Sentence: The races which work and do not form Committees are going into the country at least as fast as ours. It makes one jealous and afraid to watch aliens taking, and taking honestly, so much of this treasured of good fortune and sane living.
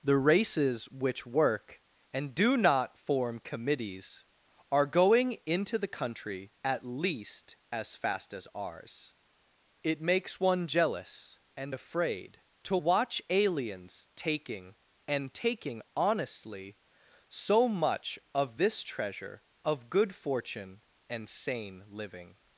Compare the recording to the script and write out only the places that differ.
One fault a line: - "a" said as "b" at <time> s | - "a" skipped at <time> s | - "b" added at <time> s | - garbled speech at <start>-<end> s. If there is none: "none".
- "treasured" said as "treasure" at 18.8 s